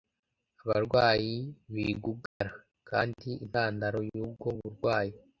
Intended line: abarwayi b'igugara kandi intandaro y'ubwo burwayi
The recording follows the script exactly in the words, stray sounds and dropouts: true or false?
false